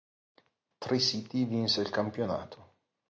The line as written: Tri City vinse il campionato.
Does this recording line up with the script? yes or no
yes